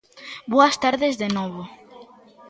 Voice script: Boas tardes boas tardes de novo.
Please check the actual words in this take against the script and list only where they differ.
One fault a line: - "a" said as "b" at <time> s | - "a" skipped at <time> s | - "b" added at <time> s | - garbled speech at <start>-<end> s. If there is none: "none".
- "boas tardes" skipped at 1.1 s